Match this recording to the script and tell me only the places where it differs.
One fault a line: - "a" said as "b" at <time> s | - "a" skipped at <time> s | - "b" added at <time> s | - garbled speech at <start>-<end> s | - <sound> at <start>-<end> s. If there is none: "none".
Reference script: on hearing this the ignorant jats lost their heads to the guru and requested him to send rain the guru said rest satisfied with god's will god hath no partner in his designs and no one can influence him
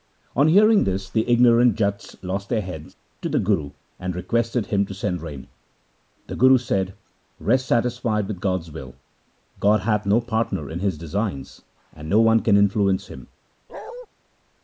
- bark at 13.7-14.1 s